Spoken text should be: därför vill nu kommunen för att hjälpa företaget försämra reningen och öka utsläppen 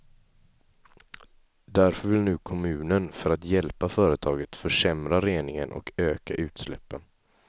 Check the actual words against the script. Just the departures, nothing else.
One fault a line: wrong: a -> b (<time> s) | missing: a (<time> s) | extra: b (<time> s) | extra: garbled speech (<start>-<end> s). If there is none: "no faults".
no faults